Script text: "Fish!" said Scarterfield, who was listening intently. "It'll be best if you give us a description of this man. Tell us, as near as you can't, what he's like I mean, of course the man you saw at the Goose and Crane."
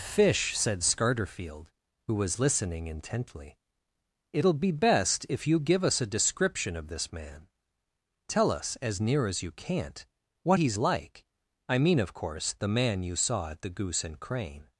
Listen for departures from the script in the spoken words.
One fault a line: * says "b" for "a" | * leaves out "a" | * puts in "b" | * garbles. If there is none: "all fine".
all fine